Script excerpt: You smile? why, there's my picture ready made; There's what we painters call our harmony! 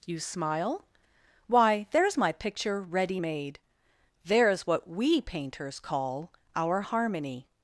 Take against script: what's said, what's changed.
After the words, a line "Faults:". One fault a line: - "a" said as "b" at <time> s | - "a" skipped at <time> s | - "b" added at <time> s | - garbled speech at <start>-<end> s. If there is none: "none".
You smile? why, there's my picture ready made; There's what we painters call our harmony!
Faults:
none